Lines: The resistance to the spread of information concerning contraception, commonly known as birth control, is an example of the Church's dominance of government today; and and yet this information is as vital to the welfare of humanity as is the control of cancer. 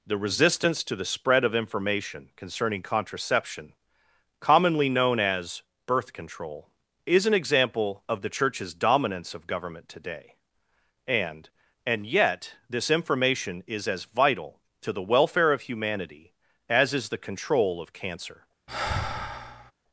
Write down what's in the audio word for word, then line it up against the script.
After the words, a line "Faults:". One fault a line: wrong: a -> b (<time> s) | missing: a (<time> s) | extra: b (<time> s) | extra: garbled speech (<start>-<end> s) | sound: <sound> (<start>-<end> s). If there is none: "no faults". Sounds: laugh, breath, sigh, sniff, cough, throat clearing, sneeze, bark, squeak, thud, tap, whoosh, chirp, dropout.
The resistance to the spread of information concerning contraception, commonly known as birth control, is an example of the Church's dominance of government today; and and yet this information is as vital to the welfare of humanity as is the control of cancer.
Faults:
sound: sigh (18.7-19.7 s)